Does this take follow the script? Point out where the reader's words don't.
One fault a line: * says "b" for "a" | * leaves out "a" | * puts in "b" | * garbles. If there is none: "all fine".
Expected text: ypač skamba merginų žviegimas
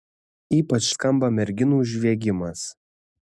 all fine